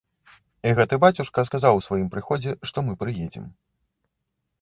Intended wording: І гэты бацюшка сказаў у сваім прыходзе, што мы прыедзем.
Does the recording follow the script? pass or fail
pass